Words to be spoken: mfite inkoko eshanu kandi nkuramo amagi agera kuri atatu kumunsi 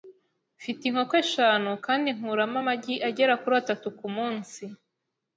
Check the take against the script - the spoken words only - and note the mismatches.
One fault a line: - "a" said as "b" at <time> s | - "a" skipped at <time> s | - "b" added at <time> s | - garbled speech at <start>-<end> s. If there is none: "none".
none